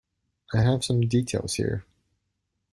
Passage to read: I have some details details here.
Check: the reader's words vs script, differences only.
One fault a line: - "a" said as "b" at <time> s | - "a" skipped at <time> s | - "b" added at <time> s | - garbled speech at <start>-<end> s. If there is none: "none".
- "details" skipped at 1.5 s